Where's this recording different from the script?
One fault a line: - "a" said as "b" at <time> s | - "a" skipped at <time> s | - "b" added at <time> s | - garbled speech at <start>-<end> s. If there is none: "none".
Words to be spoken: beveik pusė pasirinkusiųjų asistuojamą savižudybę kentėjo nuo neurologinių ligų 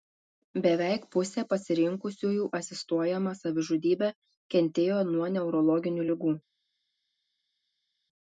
none